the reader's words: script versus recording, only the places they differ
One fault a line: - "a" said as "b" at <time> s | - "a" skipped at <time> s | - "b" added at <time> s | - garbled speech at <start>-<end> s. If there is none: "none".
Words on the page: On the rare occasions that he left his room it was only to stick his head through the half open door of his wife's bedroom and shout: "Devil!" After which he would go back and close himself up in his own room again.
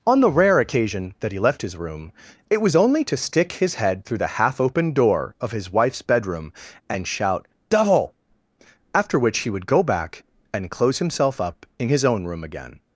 - "occasions" said as "occasion" at 0.6 s